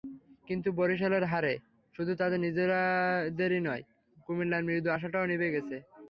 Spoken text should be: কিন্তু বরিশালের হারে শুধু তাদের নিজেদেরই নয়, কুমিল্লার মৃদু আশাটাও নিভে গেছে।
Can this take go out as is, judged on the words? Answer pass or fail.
pass